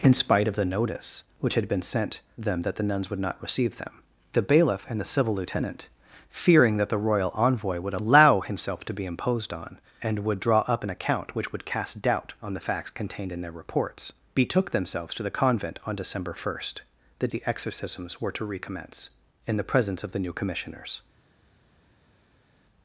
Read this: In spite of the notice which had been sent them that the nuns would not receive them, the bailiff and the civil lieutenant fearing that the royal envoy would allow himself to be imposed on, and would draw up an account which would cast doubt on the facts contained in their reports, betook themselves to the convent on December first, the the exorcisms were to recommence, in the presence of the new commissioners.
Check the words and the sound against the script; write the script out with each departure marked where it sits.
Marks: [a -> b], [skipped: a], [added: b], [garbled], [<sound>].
In spite of the notice which had been sent them that the nuns would not receive them, the bailiff and the civil lieutenant fearing that the royal envoy would allow himself to be imposed on, and would draw up an account which would cast doubt on the facts contained in their reports, betook themselves to the convent on December first, the the exorcisms were to recommence, in the presence of the new commissioners.